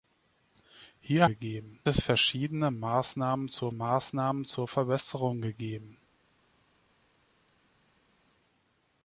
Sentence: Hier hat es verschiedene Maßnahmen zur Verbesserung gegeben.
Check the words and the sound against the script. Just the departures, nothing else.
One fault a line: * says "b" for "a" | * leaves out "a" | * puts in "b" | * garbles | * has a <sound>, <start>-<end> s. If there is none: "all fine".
* says "gegeben" for "hat"
* puts in "Maßnahmen zur"